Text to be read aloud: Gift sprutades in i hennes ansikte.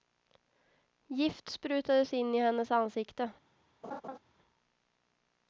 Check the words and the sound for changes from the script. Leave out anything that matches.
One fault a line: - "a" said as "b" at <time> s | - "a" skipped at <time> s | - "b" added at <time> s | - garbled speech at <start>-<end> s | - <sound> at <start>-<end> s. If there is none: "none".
- laugh at 3.8-4.2 s